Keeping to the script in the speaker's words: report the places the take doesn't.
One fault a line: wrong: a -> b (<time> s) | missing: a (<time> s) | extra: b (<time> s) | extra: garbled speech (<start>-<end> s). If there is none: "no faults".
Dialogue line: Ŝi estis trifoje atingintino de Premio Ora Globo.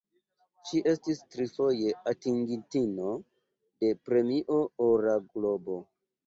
no faults